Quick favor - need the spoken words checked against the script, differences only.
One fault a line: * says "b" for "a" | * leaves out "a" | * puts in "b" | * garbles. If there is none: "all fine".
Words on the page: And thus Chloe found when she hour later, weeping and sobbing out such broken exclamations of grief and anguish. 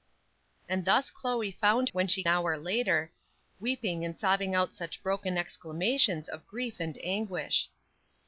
all fine